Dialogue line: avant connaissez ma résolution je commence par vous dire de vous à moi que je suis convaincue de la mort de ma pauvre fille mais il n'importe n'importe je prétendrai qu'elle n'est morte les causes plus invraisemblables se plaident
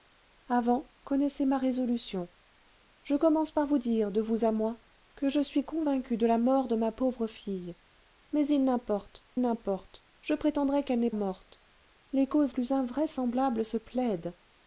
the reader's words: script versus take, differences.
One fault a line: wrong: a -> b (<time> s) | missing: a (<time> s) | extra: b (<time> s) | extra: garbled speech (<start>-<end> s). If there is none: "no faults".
no faults